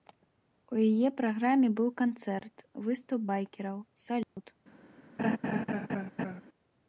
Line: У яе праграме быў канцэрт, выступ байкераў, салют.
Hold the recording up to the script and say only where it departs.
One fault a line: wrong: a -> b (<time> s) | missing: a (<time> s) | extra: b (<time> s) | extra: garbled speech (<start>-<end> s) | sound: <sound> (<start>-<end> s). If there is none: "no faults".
sound: dropout (4.2-4.4 s)
sound: laugh (5.2-6.4 s)